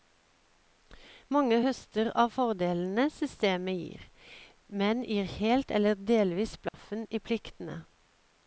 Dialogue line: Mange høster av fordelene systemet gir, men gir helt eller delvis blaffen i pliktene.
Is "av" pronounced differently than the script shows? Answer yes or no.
no